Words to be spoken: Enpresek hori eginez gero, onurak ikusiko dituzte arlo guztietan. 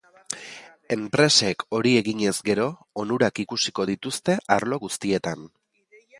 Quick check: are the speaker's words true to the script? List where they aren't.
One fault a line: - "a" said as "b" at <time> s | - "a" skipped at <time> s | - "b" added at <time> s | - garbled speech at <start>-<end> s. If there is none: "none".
none